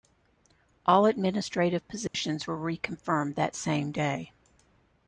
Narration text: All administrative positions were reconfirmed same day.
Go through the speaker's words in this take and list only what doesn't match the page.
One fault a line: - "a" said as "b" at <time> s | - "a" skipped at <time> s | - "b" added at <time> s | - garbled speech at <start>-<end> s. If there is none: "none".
- "that" added at 3.3 s